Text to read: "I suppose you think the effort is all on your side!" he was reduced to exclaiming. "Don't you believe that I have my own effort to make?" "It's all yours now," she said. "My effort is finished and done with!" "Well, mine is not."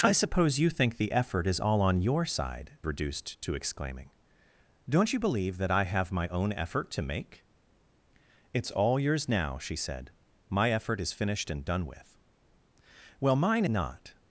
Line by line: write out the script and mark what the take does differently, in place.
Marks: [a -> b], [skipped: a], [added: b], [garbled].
"I suppose you think the effort is all on your side!" [skipped: he was] reduced to exclaiming. "Don't you believe that I have my own effort to make?" "It's all yours now," she said. "My effort is finished and done with!" "Well, mine [skipped: is] not."